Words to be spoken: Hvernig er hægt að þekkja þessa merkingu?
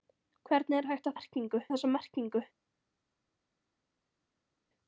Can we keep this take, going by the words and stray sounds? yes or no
no